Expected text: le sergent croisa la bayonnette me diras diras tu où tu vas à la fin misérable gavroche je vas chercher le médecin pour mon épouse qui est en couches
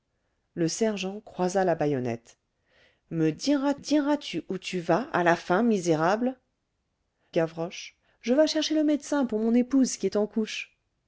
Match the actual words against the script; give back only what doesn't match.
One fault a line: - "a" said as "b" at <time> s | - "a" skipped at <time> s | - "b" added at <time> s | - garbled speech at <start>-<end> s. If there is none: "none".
none